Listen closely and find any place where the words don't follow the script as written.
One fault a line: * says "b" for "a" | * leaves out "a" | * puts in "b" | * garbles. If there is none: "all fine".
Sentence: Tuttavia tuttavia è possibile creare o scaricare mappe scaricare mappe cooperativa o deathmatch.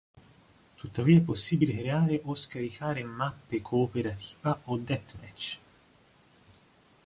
* leaves out "tuttavia"
* leaves out "scaricare mappe"